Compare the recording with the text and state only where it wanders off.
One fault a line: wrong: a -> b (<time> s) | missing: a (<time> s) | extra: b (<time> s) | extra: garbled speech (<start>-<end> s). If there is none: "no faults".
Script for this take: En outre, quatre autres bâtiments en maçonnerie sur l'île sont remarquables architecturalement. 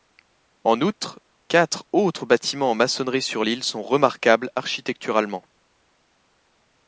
no faults